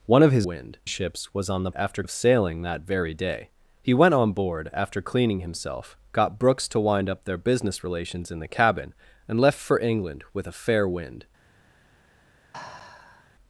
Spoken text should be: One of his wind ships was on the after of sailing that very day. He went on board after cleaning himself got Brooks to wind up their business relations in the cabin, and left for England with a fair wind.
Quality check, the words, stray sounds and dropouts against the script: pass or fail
fail